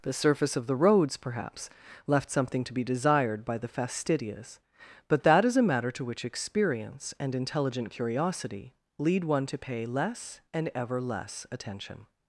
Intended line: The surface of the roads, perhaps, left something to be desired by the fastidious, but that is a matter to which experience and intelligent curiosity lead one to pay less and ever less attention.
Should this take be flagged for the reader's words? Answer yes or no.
no